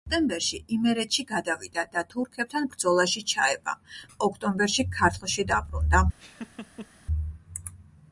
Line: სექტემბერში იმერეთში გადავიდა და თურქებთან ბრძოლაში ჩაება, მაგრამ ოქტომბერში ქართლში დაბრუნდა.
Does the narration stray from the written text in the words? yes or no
yes